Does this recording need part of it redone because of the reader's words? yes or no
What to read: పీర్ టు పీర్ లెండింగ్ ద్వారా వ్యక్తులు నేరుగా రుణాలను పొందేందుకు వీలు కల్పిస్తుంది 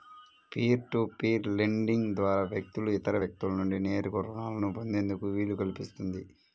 yes